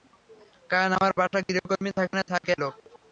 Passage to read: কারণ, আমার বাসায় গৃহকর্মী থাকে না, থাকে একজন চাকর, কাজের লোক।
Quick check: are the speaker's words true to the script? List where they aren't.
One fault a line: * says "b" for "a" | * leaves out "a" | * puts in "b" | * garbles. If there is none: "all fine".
* leaves out "একজন চাকর কাজের"